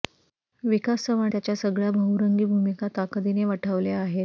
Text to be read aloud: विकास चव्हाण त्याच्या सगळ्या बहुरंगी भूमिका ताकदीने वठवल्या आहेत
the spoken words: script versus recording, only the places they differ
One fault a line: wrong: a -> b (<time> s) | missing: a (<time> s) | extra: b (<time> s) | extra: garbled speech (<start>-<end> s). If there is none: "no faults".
no faults